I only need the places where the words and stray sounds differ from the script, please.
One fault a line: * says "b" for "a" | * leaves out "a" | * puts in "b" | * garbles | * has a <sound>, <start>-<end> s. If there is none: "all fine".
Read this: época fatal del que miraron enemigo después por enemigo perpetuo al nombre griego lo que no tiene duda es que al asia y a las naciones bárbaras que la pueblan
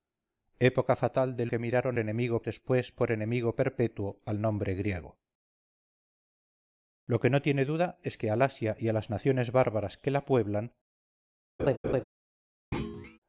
* has a laugh, 11.6-12.0 s
* has a thud, 12.7-13.2 s